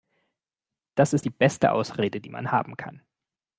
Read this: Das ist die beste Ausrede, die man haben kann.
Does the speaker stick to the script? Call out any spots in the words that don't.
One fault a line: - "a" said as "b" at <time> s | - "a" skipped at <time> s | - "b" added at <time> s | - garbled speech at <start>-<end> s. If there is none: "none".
none